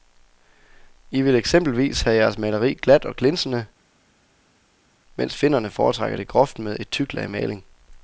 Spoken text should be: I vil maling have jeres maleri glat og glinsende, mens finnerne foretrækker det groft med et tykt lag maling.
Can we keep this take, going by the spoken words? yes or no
no